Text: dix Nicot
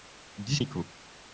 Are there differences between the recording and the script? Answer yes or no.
no